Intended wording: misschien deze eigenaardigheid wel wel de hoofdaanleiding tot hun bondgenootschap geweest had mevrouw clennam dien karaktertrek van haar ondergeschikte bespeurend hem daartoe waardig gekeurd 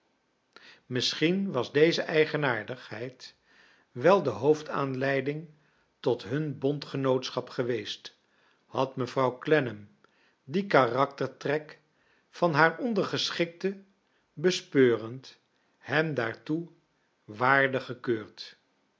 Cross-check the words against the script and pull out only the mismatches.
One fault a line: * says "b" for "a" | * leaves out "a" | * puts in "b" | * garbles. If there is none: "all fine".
* puts in "was"
* leaves out "wel"